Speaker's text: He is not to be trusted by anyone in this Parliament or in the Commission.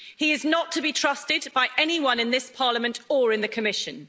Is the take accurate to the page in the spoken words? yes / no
yes